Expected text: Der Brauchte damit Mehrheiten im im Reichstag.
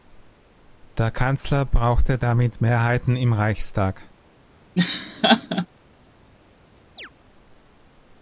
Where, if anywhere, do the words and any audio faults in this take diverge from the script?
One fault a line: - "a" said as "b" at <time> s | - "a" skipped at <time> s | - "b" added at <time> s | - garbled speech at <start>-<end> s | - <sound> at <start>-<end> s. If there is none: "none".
- "Kanzler" added at 1.1 s
- "im" skipped at 3.3 s
- laugh at 4.8-5.7 s
- chirp at 7.0-7.1 s